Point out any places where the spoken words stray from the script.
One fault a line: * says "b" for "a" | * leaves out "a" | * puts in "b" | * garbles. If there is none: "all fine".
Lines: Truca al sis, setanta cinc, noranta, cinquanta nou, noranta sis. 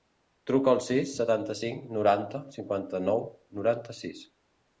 all fine